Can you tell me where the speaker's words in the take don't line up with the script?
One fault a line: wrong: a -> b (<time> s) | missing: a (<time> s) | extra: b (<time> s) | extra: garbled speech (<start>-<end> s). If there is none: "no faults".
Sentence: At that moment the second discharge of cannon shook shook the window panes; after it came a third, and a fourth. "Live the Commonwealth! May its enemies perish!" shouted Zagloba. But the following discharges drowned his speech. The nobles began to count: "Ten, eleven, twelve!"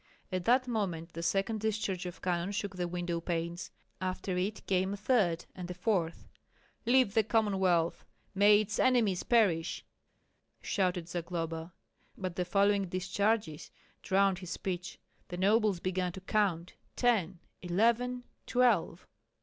missing: shook (2.8 s)